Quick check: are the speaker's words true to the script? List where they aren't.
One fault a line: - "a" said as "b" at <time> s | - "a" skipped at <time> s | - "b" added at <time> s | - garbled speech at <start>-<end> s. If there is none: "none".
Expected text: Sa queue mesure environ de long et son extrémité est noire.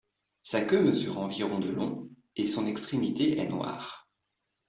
none